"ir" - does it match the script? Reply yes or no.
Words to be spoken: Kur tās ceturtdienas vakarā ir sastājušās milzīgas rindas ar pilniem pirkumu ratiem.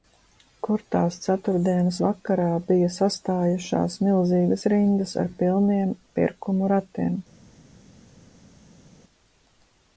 no